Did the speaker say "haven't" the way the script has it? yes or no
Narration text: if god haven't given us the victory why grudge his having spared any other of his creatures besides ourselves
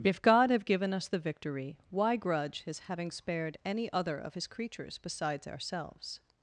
no